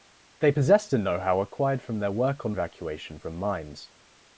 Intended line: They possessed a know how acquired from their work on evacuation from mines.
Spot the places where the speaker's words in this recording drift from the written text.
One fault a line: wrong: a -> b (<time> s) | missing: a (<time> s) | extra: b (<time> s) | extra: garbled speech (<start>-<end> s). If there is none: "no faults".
no faults